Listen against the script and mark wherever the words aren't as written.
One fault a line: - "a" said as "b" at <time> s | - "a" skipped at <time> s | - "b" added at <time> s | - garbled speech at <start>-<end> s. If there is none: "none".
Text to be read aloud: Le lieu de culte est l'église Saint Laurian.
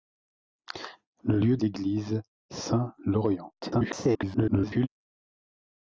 - "de culte est" skipped at 1.6 s
- garbled speech at 3.6-4.9 s